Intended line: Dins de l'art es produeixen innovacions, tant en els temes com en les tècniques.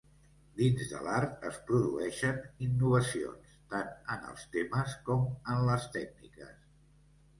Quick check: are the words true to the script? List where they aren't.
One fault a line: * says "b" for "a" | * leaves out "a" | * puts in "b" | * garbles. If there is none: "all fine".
all fine